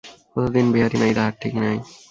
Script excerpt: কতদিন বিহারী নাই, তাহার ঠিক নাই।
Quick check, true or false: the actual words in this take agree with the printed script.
true